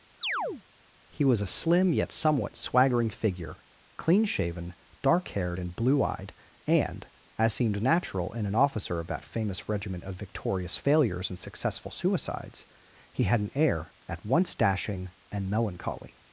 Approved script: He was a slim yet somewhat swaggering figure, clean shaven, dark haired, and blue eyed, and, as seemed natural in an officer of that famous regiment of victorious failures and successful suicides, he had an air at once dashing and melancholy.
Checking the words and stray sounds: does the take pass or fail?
fail